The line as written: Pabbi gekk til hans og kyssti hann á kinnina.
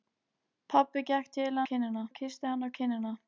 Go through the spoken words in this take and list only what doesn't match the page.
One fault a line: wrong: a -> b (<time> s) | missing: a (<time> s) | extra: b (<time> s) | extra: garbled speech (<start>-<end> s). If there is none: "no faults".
wrong: hans -> kinnina (1.7 s)